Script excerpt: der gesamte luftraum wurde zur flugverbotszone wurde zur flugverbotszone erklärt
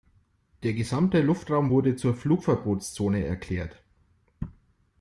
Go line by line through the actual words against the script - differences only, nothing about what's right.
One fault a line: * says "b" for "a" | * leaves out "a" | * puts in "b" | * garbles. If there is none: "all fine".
* leaves out "wurde zur flugverbotszone"